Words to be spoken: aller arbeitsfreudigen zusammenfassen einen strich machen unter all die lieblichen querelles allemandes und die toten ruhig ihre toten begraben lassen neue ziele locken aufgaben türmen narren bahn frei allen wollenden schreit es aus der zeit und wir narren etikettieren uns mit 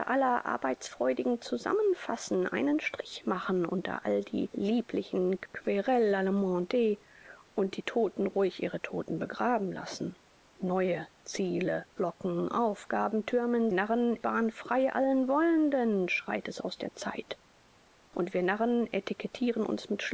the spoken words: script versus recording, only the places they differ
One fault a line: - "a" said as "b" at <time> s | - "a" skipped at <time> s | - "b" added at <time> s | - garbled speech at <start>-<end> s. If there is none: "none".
none